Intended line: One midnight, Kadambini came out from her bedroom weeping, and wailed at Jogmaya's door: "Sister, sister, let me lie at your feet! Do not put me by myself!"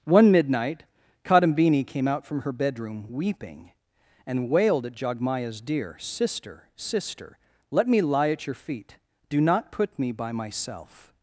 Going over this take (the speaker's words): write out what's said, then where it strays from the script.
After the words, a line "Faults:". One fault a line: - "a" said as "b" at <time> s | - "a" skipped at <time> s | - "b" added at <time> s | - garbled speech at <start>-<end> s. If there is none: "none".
One midnight, Kadambini came out from her bedroom weeping, and wailed at Jogmaya's deer: "Sister, sister, let me lie at your feet! Do not put me by myself!"
Faults:
- "door" said as "deer" at 5.6 s